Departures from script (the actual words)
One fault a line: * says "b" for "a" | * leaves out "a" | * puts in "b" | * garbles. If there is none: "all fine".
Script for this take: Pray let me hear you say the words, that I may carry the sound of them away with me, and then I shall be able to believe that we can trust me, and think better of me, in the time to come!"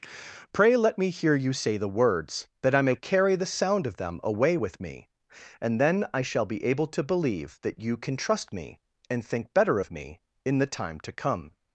* says "you" for "we"